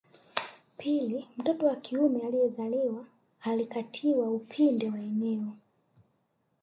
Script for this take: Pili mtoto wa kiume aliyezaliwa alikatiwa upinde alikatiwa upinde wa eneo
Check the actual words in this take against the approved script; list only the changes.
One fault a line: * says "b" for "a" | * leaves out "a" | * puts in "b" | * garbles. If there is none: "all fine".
* leaves out "alikatiwa upinde"